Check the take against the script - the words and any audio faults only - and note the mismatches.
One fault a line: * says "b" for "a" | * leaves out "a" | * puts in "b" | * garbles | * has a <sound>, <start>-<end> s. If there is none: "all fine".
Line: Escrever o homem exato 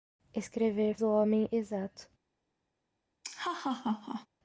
* has a laugh, 3.2-4.3 s